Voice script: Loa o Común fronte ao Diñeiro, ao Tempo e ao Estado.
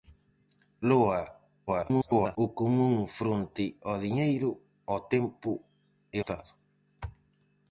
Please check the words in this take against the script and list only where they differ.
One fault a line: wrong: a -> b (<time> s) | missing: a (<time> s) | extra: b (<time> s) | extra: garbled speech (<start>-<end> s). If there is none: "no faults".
extra: garbled speech (1.7-2.4 s)
missing: ao (6.2 s)